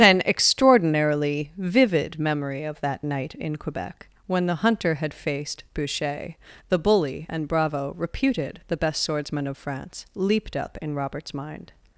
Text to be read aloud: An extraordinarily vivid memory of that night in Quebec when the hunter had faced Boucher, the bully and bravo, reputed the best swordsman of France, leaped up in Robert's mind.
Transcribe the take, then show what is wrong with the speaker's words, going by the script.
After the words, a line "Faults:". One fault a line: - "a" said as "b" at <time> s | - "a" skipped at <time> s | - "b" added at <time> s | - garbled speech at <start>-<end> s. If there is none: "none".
An extraordinarily vivid memory of that night in Quebec when the hunter had faced Boucher, the bully and bravo, reputed the best swordsman of France, leaped up in Robert's mind.
Faults:
none